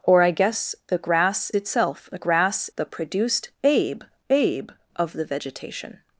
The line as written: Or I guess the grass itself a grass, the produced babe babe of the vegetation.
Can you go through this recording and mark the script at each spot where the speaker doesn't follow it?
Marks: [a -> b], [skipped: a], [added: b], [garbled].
Or I guess the grass itself a grass, the produced babe babe of the vegetation.